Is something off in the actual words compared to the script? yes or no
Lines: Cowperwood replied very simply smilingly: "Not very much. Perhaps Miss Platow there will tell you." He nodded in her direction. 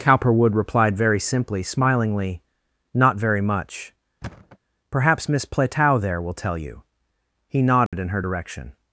no